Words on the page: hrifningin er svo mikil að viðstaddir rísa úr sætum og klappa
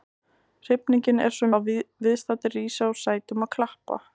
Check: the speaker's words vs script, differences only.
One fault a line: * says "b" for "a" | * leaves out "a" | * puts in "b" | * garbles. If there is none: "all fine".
* leaves out "mikil"